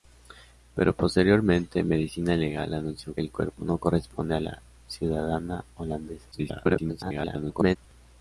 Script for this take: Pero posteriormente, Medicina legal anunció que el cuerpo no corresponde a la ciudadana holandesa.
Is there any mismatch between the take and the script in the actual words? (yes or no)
yes